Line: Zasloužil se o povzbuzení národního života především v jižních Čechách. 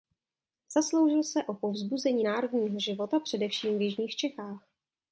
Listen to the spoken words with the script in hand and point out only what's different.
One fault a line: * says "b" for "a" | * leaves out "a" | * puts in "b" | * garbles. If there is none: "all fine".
all fine